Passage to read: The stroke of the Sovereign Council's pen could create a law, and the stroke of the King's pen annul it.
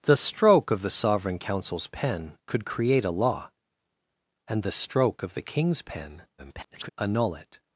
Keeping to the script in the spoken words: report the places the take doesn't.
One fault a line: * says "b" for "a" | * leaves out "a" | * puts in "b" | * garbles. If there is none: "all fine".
* garbles